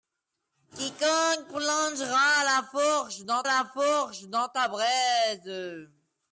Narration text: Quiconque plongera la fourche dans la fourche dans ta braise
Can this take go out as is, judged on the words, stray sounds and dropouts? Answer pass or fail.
pass